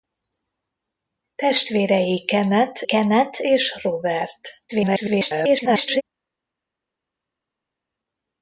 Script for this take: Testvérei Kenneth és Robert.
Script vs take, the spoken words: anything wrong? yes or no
yes